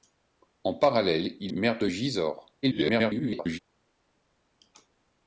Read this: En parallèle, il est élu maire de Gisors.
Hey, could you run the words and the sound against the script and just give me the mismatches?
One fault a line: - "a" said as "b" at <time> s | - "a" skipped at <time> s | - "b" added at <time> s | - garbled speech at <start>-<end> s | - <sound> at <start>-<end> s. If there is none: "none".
- "est élu" skipped at 1.5 s
- garbled speech at 2.6-3.6 s